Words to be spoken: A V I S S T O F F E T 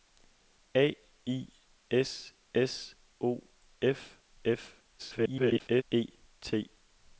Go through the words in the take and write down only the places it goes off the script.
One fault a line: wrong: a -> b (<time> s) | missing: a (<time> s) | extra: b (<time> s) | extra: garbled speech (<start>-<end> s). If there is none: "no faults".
missing: V (0.9 s)
missing: T (2.9 s)
extra: garbled speech (5.0-5.8 s)